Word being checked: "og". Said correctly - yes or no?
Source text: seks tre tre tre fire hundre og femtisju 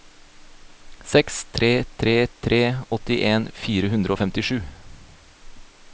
yes